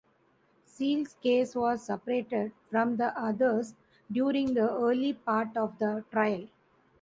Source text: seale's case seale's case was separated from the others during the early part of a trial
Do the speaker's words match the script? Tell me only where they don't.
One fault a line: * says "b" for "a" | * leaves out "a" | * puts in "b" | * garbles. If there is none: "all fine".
* leaves out "seale's case"
* says "the" for "a"